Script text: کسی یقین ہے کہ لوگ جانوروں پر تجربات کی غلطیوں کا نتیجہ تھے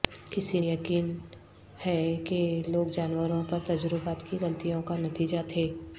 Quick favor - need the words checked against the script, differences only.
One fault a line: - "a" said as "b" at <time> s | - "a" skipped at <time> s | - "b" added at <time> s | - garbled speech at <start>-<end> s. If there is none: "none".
none